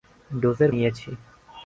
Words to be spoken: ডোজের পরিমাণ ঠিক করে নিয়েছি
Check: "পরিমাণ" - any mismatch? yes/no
yes